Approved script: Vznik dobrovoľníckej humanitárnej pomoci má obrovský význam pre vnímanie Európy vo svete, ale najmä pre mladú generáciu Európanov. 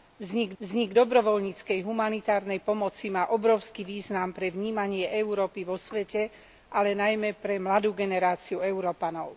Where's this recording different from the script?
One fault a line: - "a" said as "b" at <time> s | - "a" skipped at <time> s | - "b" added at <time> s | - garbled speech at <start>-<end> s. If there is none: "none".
- "vznik" added at 0.6 s